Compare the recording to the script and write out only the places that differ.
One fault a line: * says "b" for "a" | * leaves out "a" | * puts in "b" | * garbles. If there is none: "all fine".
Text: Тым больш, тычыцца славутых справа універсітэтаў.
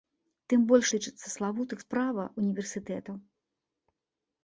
all fine